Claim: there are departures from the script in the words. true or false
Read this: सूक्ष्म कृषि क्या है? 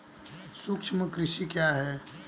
false